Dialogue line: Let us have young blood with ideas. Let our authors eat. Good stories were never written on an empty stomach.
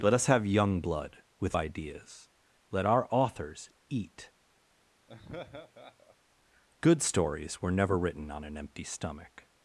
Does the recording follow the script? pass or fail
pass